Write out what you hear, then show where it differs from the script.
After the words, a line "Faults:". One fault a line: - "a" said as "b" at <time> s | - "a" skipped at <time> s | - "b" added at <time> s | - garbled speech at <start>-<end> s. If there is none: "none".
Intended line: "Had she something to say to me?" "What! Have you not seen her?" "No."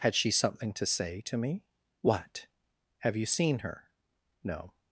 "Had she something to say to me?" "What! Have you seen her?" "No."
Faults:
- "not" skipped at 3.3 s